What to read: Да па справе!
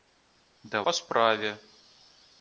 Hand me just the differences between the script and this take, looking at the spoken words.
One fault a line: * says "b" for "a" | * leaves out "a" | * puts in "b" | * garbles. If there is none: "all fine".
all fine